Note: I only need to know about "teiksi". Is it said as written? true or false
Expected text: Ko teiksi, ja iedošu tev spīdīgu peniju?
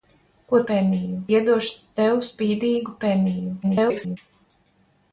false